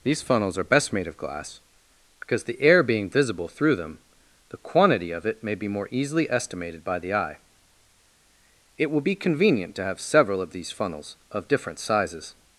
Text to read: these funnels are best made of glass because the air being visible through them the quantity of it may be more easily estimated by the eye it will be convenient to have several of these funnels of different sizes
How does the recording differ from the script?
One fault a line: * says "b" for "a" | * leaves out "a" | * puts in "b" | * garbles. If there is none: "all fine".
all fine